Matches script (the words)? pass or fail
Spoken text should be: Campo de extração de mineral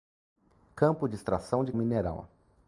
pass